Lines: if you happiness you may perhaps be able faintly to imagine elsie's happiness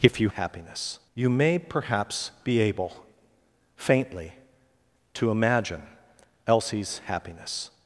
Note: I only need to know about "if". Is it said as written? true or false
true